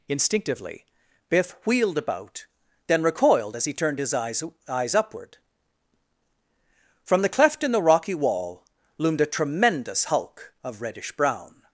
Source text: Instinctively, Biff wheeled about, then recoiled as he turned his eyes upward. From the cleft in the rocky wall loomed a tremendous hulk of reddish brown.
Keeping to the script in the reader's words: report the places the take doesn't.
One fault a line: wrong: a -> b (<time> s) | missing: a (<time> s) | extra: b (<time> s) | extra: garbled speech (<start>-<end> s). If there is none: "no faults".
extra: eyes (4.7 s)